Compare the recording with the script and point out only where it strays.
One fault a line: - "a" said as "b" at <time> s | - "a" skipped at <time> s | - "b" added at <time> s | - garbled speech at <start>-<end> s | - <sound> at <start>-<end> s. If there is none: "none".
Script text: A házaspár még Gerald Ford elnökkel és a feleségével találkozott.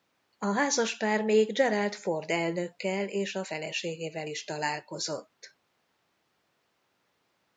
- "is" added at 4.2 s